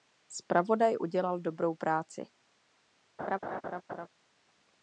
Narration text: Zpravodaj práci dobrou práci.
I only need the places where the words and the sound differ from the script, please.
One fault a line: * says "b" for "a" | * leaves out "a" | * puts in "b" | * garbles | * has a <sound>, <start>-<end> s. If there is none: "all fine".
* says "udělal" for "práci"
* has a laugh, 3.2-4.1 s